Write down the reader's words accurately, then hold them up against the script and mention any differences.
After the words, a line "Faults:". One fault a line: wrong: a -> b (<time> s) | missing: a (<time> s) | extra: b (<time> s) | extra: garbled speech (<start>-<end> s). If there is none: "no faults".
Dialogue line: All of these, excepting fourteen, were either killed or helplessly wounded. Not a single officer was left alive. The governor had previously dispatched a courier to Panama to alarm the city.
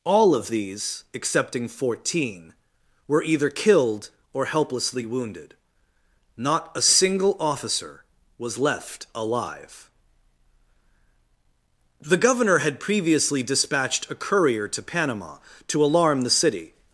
All of these, excepting fourteen, were either killed or helplessly wounded. Not a single officer was left alive. The governor had previously dispatched a courier to Panama to alarm the city.
Faults:
no faults